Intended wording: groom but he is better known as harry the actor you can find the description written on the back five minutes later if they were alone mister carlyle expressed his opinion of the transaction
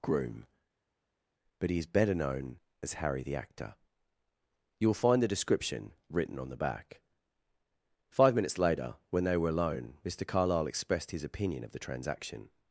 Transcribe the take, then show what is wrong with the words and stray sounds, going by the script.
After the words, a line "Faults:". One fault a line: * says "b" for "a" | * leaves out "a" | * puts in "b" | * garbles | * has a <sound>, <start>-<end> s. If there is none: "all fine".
groom but he is better known as harry the actor you will find the description written on the back five minutes later when they were alone mister carlyle expressed his opinion of the transaction
Faults:
* says "will" for "can"
* says "when" for "if"